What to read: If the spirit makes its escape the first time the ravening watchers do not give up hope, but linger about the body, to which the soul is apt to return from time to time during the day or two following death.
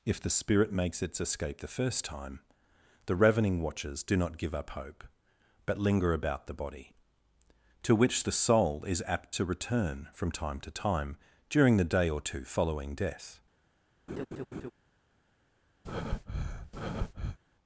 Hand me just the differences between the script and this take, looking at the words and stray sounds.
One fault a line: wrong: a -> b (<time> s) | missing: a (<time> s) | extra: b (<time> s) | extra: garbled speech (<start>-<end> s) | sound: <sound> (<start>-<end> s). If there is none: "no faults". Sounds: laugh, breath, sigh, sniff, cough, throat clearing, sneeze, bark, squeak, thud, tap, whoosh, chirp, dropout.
sound: laugh (14.1-14.7 s)
sound: breath (15.8-17.4 s)